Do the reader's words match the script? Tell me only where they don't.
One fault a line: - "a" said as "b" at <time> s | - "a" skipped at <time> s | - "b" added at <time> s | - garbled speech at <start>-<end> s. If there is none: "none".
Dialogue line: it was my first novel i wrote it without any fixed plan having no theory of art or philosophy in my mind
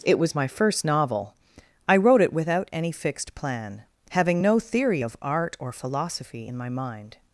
none